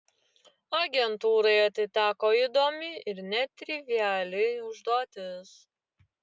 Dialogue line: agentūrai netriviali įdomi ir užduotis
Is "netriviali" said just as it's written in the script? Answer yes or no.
no